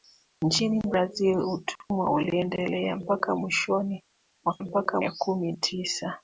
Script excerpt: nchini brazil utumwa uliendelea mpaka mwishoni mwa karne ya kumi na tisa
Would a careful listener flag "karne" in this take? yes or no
yes